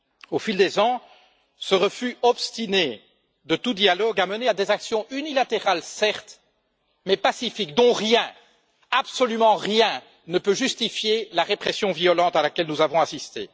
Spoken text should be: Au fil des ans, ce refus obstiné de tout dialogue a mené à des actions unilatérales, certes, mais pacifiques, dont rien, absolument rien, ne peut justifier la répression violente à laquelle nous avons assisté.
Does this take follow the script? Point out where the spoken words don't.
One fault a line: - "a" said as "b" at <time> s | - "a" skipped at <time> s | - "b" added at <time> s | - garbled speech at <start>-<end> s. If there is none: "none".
none